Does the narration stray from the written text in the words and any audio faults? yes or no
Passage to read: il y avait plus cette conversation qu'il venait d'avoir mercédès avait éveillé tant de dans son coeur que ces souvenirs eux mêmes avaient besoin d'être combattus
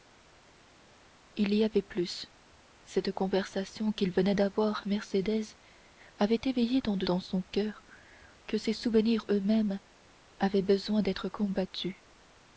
no